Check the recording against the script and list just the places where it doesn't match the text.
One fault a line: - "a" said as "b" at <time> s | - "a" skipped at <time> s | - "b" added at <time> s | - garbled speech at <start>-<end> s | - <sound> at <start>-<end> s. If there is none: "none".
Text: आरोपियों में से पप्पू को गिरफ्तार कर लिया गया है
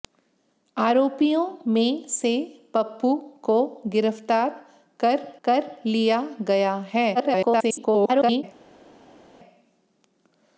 - "कर" added at 5.4 s
- garbled speech at 7.1-8.4 s